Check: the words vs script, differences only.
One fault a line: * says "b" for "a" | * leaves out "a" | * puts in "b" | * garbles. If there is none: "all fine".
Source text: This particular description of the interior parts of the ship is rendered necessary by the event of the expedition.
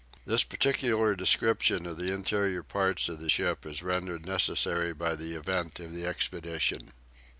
all fine